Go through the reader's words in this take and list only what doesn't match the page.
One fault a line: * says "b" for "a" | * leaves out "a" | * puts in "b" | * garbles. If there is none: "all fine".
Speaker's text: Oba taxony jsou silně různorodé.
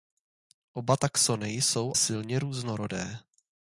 all fine